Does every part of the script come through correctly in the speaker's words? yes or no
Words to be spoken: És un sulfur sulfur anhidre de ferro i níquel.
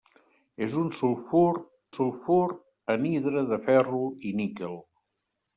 yes